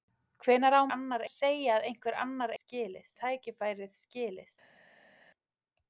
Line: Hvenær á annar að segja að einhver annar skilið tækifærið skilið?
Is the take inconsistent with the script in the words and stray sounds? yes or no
no